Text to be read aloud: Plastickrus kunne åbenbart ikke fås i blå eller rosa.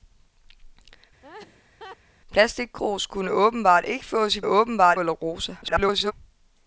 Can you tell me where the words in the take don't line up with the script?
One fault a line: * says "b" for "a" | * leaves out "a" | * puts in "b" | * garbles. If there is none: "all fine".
* says "åbenbart" for "blå"
* garbles